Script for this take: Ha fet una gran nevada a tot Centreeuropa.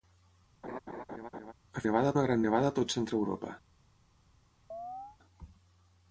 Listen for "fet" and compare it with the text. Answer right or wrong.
wrong